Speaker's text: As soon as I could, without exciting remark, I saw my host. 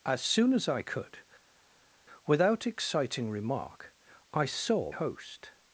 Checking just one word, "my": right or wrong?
wrong